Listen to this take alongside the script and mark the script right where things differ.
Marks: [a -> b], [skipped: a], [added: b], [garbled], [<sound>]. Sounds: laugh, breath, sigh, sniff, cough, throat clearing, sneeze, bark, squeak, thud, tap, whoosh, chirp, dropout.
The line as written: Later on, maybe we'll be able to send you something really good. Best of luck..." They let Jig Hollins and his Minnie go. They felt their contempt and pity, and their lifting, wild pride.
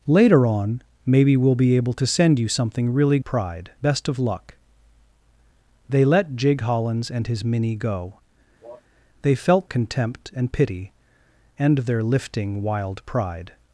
Later on, maybe we'll be able to send you something really [good. -> pride] Best of luck..." They let Jig Hollins and his Minnie go. [cough] They felt [skipped: their] contempt and pity, and their lifting, wild pride.